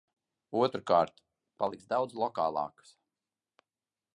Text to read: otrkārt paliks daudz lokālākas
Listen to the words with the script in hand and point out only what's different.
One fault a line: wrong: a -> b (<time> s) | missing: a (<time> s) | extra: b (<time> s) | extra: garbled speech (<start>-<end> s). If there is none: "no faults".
no faults